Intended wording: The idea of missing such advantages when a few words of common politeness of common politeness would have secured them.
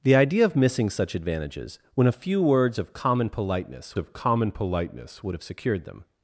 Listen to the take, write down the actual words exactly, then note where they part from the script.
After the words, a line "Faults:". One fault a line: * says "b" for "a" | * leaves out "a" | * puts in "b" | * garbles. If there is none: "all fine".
The idea of missing such advantages when a few words of common politeness of common politeness would have secured them.
Faults:
all fine